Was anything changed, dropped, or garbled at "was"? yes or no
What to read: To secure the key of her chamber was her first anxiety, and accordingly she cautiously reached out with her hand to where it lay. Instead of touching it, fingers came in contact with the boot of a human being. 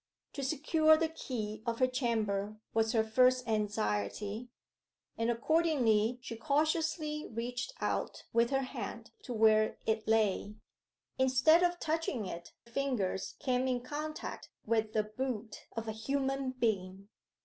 no